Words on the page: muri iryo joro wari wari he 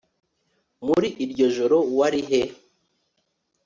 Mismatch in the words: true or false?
true